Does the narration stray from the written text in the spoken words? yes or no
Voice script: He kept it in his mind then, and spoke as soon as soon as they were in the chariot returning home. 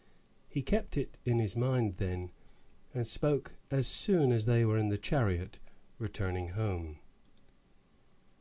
yes